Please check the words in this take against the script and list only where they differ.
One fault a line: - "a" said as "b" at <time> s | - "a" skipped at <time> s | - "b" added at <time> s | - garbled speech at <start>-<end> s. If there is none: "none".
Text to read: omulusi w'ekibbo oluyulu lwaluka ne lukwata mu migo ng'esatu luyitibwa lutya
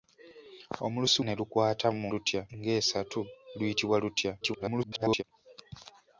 - "w'ekibbo oluyulu lwaluka" skipped at 1.2 s
- "migo" said as "lutya" at 2.1 s
- garbled speech at 4.4-5.2 s